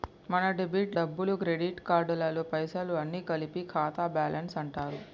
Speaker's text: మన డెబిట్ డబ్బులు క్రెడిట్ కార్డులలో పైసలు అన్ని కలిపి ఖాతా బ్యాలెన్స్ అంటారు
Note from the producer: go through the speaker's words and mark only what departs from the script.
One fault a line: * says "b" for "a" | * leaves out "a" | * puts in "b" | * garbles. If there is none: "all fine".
all fine